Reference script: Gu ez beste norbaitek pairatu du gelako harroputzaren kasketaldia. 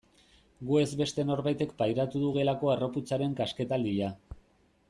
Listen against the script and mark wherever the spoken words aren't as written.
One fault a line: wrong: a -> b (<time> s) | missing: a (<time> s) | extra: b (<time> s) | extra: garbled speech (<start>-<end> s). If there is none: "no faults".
no faults